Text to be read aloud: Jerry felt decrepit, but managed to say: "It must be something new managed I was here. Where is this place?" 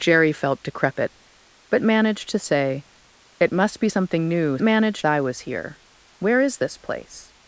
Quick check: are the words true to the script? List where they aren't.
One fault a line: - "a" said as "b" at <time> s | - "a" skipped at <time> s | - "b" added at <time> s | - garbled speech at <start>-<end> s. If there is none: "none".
none